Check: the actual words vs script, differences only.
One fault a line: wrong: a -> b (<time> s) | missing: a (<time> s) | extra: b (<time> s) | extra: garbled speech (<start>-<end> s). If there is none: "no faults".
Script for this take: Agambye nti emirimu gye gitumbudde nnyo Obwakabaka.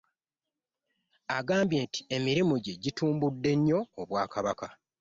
no faults